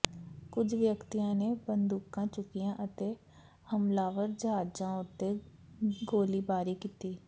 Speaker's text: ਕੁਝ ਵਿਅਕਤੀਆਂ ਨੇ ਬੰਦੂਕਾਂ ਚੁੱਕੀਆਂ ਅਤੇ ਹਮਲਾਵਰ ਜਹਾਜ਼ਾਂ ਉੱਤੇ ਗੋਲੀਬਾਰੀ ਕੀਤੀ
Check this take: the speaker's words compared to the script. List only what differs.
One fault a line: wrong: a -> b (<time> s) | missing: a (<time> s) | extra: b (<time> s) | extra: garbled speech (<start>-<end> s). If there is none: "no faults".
no faults